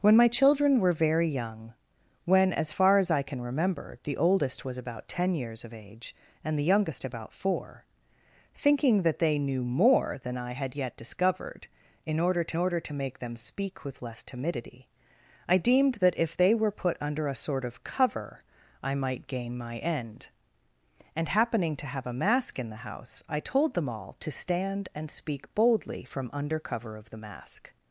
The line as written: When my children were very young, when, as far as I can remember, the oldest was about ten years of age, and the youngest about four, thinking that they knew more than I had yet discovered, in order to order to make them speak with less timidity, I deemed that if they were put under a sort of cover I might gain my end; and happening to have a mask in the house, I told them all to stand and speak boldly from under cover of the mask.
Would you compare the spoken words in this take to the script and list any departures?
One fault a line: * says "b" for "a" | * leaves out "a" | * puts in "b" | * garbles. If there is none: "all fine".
all fine